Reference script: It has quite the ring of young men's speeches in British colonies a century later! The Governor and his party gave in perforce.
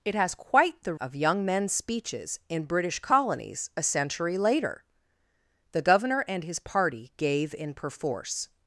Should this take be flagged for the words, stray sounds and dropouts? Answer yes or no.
yes